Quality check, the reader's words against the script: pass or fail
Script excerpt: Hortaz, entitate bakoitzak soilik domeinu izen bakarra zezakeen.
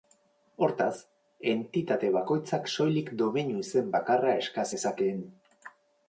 fail